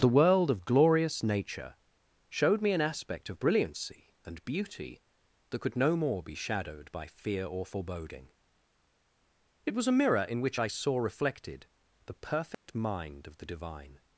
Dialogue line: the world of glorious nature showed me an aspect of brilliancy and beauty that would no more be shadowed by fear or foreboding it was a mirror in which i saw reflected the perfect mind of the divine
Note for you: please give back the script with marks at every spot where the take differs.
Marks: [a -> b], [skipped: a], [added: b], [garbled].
the world of glorious nature showed me an aspect of brilliancy and beauty that [would -> could] no more be shadowed by fear or foreboding it was a mirror in which i saw reflected the perfect mind of the divine